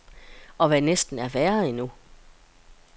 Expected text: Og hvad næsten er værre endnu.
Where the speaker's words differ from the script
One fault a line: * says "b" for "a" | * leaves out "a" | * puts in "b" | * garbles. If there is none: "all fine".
all fine